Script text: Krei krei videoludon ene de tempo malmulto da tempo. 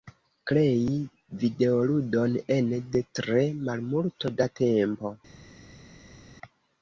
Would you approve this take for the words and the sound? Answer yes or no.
no